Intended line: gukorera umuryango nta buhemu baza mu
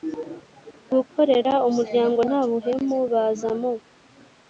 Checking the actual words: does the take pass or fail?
pass